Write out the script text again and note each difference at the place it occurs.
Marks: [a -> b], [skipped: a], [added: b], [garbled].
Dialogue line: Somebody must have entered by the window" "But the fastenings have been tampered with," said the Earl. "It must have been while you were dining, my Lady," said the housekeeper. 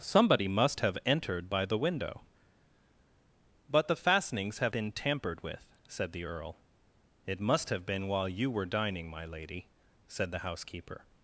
Somebody must have entered by the window" "But the fastenings have been tampered with," said the Earl. "It must have been while you were dining, my Lady," said the housekeeper.